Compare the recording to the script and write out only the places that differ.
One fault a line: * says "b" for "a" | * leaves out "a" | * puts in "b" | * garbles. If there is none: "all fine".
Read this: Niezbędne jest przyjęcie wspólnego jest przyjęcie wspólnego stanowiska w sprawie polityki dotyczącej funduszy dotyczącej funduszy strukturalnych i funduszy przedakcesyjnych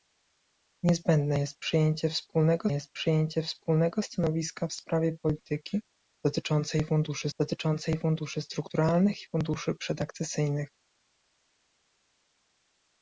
all fine